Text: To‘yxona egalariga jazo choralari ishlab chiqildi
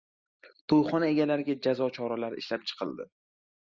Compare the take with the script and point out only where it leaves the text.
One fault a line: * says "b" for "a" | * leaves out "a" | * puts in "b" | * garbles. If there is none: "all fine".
all fine